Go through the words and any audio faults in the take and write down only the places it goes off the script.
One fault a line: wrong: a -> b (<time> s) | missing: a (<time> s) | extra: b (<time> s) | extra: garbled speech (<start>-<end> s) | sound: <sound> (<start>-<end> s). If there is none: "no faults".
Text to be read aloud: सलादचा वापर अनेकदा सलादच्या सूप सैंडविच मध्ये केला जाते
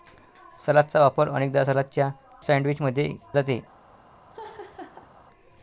missing: सूप (2.1 s)
missing: केला (3.1 s)
sound: laugh (4.3-5.1 s)